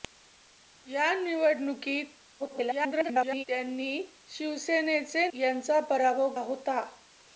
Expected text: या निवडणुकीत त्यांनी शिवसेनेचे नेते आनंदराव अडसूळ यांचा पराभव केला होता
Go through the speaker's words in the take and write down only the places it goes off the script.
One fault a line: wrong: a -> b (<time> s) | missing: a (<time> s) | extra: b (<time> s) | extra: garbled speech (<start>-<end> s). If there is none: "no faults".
extra: garbled speech (2.4-3.4 s)
missing: नेते आनंदराव अडसूळ (5.3 s)
missing: केला (6.3 s)